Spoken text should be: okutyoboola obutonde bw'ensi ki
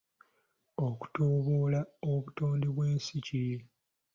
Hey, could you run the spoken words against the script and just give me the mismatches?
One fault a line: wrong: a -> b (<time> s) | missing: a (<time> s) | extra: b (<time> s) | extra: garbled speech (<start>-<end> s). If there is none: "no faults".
no faults